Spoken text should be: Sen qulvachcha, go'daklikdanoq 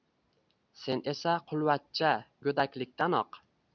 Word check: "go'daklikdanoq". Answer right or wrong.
right